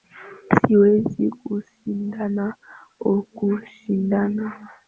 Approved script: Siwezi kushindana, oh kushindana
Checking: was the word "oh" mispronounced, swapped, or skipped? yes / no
no